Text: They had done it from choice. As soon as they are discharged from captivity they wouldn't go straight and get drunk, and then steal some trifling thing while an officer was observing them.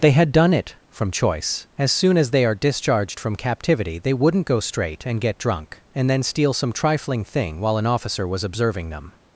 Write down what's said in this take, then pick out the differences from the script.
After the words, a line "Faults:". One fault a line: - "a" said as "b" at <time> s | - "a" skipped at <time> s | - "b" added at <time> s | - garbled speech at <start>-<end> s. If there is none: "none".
They had done it from choice. As soon as they are discharged from captivity they wouldn't go straight and get drunk, and then steal some trifling thing while an officer was observing them.
Faults:
none